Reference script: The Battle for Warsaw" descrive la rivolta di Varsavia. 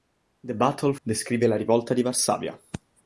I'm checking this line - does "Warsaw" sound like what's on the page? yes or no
no